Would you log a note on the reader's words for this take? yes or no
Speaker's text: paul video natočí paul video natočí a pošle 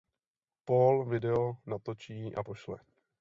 yes